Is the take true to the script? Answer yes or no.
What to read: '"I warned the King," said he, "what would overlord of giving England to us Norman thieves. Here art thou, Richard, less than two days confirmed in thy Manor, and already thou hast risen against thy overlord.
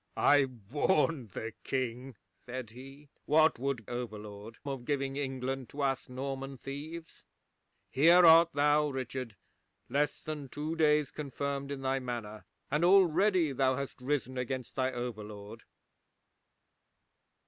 yes